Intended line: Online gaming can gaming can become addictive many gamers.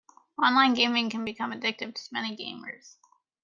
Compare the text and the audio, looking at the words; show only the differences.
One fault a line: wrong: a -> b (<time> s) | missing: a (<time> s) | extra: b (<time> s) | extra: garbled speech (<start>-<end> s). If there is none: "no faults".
missing: gaming can (1.2 s)
extra: to (1.9 s)